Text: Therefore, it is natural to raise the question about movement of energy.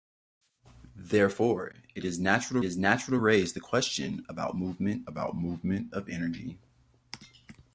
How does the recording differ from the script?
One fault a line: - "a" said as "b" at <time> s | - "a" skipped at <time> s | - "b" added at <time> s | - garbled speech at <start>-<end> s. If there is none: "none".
- "is natural" added at 2.6 s
- "about movement" added at 5.1 s